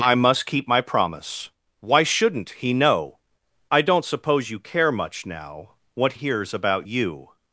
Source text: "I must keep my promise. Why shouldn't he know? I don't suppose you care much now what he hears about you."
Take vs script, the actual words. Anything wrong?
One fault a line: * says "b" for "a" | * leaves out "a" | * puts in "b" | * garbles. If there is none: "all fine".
* leaves out "he"